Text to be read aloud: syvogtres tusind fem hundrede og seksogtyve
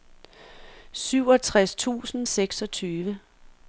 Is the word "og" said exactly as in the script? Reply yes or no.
no